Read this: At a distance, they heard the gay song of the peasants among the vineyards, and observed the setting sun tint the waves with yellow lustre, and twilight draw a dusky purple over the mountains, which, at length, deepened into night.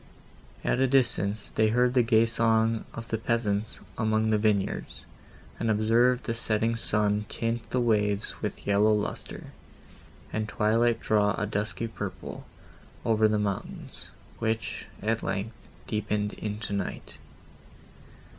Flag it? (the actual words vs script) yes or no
no